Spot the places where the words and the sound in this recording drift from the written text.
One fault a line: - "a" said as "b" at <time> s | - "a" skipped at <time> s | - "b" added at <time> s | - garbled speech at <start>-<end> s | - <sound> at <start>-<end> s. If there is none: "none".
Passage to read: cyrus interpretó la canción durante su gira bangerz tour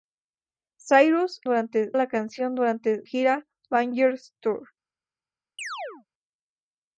- "interpretó" said as "durante" at 1.4 s
- "su" skipped at 3.1 s
- chirp at 5.6-6.1 s